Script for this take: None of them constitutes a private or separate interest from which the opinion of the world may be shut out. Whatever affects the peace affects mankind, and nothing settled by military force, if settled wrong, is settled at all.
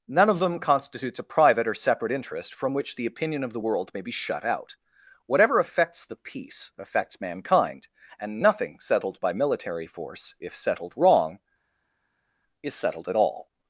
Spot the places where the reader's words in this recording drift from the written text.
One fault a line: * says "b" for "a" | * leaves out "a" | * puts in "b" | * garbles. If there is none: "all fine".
all fine